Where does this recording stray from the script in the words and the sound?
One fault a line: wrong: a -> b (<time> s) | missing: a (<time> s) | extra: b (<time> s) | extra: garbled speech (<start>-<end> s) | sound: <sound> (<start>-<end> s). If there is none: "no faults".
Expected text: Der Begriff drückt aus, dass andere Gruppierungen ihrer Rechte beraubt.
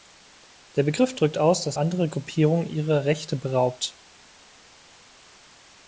no faults